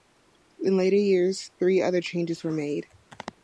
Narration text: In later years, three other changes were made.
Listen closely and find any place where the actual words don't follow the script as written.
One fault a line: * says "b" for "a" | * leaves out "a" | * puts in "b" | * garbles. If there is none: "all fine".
all fine